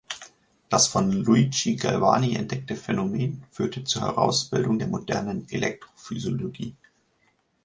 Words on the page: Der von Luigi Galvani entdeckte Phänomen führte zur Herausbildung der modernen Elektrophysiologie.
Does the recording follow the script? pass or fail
fail